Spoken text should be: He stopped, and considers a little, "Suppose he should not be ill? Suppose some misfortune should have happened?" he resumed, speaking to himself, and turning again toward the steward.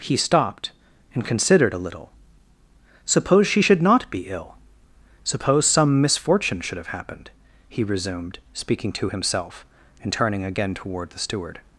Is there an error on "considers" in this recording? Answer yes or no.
yes